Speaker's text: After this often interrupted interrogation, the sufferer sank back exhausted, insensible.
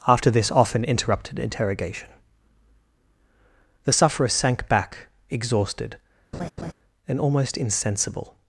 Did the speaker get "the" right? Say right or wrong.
right